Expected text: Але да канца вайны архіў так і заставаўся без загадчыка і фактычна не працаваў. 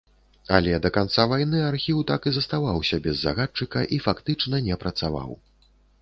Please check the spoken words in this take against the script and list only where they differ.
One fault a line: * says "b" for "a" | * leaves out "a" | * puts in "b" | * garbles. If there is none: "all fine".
all fine